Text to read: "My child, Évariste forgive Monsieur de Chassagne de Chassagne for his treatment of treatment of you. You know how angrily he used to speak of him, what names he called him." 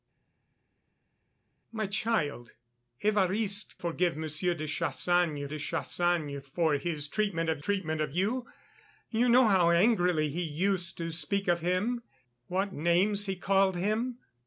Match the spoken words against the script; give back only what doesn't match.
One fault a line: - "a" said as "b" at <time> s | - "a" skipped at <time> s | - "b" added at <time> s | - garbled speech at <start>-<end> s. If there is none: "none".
none